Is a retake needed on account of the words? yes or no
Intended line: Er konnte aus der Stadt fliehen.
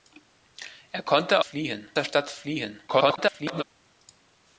yes